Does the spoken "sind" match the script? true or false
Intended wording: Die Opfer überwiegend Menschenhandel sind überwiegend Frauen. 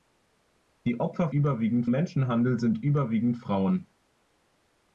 true